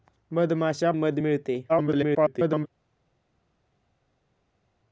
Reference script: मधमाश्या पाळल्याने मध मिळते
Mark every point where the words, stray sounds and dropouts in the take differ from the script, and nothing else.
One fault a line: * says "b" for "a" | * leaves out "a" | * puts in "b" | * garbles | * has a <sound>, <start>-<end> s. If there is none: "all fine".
* leaves out "पाळल्याने"
* garbles